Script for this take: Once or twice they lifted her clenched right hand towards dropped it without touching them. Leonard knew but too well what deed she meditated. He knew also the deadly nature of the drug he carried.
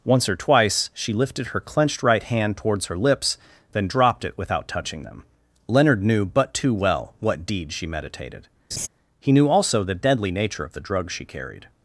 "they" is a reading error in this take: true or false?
true